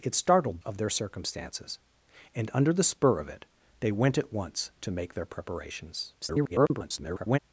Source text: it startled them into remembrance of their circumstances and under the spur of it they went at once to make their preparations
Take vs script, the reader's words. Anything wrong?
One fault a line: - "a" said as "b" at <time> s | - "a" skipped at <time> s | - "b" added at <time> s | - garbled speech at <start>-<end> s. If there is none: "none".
- "them into remembrance" skipped at 0.6 s
- garbled speech at 6.2-7.4 s